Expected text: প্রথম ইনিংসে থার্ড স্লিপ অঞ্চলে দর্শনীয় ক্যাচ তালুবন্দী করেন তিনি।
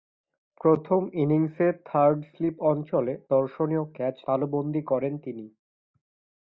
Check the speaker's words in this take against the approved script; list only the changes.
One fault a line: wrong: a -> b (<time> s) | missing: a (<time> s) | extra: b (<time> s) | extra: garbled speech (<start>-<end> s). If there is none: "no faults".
no faults